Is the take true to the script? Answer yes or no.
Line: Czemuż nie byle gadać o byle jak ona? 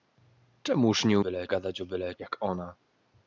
yes